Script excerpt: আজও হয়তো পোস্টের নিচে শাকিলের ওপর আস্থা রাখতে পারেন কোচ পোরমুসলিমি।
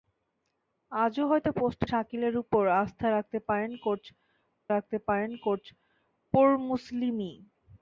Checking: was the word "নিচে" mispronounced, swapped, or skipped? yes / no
yes